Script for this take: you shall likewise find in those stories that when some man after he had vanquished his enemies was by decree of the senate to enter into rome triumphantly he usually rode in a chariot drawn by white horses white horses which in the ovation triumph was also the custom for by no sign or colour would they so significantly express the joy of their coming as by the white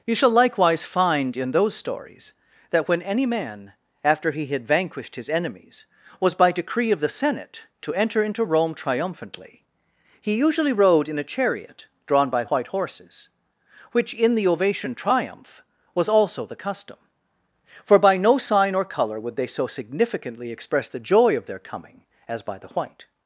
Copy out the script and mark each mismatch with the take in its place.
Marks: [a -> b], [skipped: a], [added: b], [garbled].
you shall likewise find in those stories that when [some -> any] man after he had vanquished his enemies was by decree of the senate to enter into rome triumphantly he usually rode in a chariot drawn by white horses [skipped: white horses] which in the ovation triumph was also the custom for by no sign or colour would they so significantly express the joy of their coming as by the white